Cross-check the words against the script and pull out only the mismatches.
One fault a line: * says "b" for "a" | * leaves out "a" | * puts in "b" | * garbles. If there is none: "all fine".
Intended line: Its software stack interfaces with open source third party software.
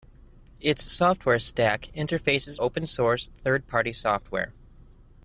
* leaves out "with"